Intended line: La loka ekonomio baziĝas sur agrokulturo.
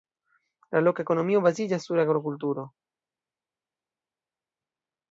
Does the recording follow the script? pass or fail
pass